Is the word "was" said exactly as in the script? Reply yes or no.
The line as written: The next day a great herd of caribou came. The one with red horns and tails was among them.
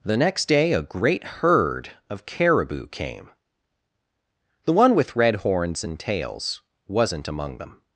no